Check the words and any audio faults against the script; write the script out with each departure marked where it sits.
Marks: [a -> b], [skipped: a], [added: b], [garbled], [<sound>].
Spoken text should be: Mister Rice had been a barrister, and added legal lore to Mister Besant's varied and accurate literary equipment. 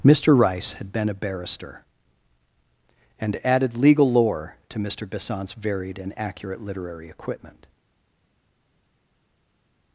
Mister Rice had been a barrister, and added legal lore to Mister Besant's varied and accurate literary equipment.